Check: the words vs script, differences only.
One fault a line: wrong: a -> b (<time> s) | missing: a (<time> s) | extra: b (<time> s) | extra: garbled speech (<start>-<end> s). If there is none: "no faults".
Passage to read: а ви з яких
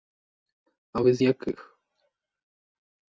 no faults